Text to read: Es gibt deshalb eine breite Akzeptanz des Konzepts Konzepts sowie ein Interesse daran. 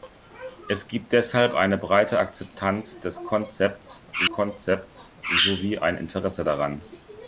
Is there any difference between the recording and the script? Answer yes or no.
no